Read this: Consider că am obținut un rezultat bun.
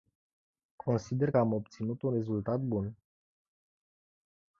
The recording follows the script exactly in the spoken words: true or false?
false